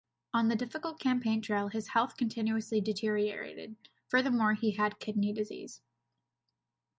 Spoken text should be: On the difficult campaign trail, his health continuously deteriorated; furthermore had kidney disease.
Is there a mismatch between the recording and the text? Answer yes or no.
yes